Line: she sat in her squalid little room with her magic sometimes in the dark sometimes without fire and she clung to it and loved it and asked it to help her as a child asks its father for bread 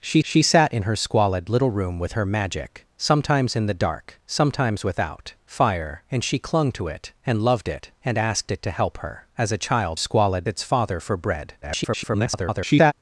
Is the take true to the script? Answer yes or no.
no